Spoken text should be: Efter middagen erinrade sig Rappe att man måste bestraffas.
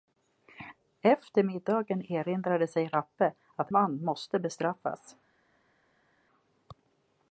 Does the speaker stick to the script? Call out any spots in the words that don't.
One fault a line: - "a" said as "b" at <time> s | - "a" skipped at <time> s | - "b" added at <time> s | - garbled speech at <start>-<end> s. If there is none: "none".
none